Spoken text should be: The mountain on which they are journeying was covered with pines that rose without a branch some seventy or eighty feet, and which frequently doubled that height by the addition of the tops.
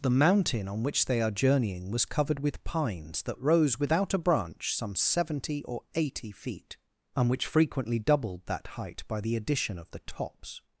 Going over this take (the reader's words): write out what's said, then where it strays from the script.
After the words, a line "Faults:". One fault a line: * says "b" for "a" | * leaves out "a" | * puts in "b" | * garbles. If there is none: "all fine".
The mountain on which they are journeying was covered with pines that rose without a branch some seventy or eighty feet, and which frequently doubled that height by the addition of the tops.
Faults:
all fine